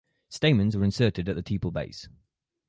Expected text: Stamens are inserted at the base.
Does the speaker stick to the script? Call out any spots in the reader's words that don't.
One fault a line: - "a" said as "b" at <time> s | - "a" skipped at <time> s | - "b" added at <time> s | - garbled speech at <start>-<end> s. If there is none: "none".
- "tepal" added at 1.4 s